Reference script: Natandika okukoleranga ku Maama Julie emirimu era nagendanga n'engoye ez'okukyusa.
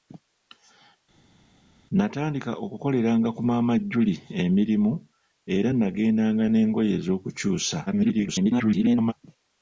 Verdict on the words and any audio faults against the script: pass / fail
fail